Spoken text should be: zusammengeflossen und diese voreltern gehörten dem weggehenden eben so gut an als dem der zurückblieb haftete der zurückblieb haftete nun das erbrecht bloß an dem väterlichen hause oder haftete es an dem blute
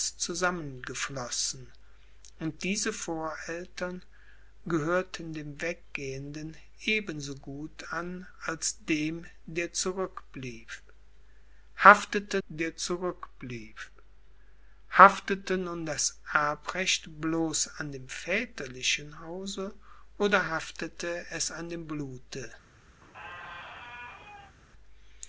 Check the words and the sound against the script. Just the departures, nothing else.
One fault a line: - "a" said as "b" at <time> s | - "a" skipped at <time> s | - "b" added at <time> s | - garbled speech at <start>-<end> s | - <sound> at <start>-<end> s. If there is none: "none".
- squeak at 23.0-24.5 s